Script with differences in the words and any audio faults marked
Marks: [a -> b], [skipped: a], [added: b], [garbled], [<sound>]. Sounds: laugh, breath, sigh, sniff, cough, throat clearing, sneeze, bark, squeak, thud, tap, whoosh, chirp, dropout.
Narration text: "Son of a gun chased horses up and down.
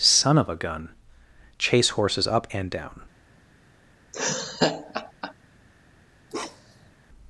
"Son of a gun [chased -> chase] horses up and down. [laugh] [bark]